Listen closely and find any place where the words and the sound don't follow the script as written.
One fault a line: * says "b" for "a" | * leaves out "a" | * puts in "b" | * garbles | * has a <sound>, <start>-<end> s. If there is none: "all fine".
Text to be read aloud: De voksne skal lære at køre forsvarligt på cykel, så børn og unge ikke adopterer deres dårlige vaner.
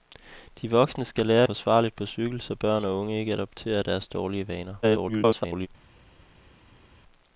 * leaves out "at køre"
* garbles